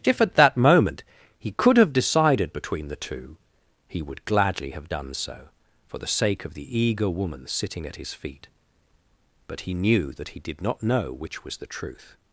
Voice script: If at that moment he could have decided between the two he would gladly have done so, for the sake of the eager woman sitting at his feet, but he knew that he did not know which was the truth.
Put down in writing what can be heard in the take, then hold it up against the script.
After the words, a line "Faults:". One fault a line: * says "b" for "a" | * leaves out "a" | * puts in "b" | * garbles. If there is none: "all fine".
If at that moment he could have decided between the two he would gladly have done so, for the sake of the eager woman sitting at his feet, but he knew that he did not know which was the truth.
Faults:
all fine